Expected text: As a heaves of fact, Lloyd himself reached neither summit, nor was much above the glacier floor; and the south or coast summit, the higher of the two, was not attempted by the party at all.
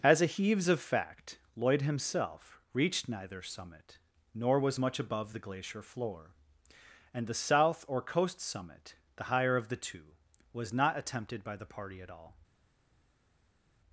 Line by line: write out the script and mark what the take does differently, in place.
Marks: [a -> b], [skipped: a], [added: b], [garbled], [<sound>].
As a heaves of fact, Lloyd himself reached neither summit, nor was much above the glacier floor; and the south or coast summit, the higher of the two, was not attempted by the party at all.